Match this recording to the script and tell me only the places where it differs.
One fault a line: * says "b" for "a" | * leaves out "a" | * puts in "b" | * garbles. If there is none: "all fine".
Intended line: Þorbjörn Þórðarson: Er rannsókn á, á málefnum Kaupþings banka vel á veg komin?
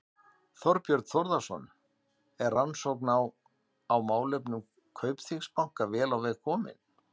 all fine